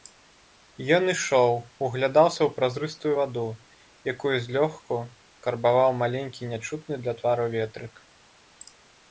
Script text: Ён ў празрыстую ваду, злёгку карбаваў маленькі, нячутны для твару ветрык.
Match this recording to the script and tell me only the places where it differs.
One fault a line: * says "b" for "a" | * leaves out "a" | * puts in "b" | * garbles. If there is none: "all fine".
* puts in "ішоў углядаўся"
* puts in "якую"